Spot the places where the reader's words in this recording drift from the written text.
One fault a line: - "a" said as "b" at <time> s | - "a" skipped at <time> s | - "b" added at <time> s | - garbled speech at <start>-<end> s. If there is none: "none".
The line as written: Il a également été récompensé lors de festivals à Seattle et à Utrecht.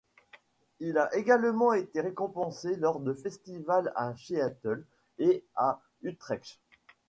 none